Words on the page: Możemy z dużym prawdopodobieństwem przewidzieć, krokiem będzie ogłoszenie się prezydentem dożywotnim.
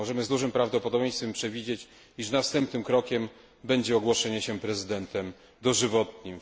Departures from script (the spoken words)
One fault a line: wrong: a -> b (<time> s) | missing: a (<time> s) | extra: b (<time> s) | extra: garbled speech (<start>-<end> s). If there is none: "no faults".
extra: iż następnym (2.2 s)